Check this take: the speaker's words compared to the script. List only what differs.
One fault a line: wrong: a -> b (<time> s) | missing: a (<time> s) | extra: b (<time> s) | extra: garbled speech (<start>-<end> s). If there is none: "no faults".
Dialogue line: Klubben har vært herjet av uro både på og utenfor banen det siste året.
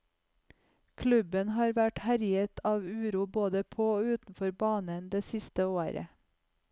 no faults